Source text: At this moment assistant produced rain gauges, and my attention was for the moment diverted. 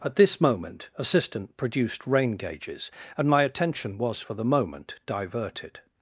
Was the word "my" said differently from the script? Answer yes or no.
no